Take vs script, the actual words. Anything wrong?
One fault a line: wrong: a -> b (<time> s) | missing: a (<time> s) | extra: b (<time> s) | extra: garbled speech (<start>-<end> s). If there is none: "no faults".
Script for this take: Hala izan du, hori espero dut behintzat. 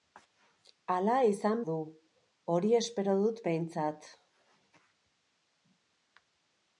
no faults